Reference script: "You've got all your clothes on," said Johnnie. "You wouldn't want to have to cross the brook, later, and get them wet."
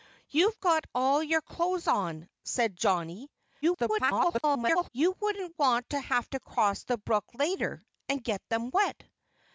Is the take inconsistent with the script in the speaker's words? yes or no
yes